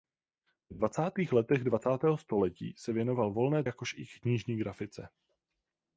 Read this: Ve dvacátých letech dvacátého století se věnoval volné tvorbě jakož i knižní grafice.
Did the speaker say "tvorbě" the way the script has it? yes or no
no